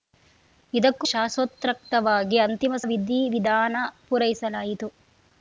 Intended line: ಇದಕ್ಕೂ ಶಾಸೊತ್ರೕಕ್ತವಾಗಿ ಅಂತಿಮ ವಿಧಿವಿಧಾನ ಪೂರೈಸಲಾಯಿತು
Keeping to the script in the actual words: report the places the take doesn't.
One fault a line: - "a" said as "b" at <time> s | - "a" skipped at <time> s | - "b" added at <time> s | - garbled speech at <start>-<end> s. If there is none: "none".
none